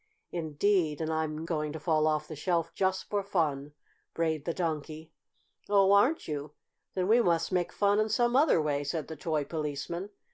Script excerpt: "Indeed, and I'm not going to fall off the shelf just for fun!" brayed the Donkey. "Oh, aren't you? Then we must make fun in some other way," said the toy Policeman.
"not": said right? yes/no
no